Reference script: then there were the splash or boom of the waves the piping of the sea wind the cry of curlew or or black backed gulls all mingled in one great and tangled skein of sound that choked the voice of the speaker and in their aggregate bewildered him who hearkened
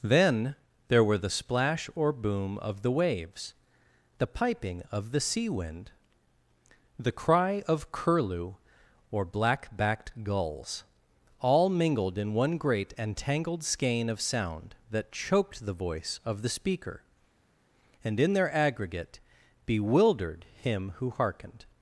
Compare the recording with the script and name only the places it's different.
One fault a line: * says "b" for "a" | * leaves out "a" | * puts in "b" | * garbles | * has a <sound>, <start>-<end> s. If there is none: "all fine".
* leaves out "or"